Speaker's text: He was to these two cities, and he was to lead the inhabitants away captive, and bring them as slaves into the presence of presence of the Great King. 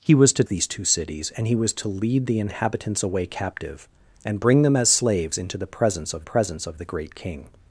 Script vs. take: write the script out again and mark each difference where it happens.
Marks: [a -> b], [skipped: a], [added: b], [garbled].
He was to these two cities, and he was to lead the inhabitants away captive, and bring them as slaves into the presence of presence of the Great King.